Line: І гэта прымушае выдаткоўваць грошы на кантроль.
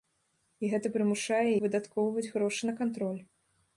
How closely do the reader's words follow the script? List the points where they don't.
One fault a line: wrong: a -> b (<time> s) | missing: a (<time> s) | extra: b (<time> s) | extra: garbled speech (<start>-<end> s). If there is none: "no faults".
no faults